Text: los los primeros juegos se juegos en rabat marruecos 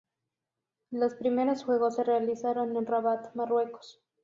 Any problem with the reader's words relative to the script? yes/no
yes